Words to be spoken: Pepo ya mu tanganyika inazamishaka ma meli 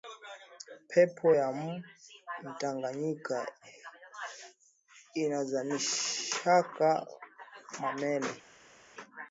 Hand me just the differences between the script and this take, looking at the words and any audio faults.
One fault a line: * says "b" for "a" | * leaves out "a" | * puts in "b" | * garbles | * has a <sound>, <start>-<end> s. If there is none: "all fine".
all fine